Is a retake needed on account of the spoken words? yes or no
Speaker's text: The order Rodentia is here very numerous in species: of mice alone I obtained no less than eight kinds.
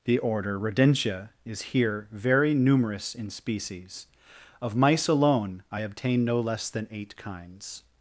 yes